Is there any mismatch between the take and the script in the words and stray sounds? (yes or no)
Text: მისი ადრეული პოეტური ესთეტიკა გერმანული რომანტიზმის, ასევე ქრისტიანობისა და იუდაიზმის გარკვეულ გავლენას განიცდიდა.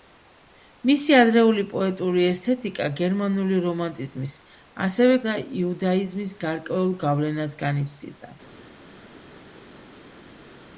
yes